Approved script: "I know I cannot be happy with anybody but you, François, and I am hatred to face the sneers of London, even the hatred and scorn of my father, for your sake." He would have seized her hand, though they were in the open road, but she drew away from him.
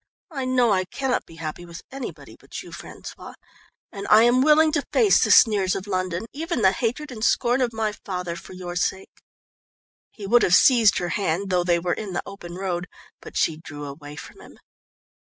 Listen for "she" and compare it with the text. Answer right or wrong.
right